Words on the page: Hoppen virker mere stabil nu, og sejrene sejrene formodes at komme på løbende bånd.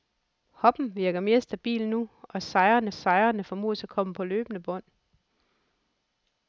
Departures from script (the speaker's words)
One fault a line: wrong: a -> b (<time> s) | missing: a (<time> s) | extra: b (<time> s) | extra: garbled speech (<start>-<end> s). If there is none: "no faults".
no faults